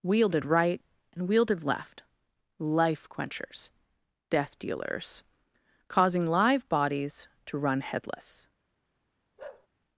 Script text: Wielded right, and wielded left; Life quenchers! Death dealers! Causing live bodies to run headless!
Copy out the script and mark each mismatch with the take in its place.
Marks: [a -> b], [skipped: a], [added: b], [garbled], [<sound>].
Wielded right, and wielded left; Life quenchers! Death dealers! Causing live bodies to run headless! [bark]